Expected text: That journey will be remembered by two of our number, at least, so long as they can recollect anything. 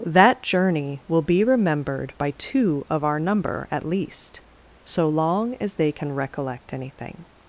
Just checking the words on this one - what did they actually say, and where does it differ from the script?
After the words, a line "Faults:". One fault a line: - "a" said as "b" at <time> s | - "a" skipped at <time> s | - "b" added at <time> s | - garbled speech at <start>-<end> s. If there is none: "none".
That journey will be remembered by two of our number, at least, so long as they can recollect anything.
Faults:
none